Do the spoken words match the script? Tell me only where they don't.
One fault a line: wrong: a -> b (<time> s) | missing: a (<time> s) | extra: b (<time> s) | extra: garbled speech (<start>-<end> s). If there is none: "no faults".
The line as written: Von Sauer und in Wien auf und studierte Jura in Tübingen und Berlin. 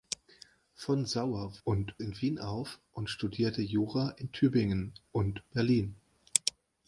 no faults